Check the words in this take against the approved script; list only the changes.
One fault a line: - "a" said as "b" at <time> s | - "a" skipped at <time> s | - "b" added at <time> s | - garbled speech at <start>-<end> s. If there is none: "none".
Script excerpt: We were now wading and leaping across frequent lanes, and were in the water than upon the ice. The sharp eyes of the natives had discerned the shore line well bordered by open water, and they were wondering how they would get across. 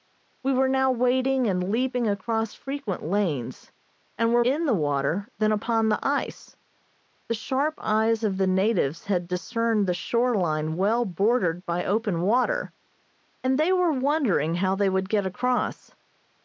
none